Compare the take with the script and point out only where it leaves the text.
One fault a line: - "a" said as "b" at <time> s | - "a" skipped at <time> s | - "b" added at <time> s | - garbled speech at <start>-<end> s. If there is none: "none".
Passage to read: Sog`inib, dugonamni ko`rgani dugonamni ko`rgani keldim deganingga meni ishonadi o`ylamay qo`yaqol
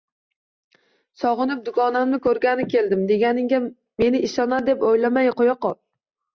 - "dugonamni ko`rgani" skipped at 2.7 s
- "deb" added at 4.7 s